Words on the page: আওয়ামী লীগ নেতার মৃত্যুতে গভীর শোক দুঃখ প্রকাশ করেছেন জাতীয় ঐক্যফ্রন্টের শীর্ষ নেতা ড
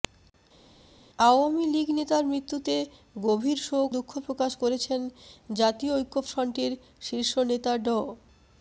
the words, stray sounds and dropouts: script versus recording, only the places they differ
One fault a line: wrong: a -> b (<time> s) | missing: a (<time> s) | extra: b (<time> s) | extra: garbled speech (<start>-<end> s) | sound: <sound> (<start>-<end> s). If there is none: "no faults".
no faults